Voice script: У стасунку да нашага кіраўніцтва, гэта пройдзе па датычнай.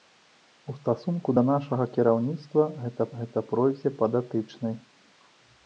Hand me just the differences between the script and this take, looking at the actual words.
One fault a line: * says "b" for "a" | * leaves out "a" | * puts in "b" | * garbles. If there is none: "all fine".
* puts in "гэта"